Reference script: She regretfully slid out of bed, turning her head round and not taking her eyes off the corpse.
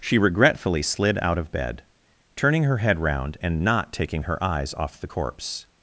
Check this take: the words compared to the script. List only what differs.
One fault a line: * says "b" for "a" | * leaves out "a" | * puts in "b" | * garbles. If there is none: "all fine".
all fine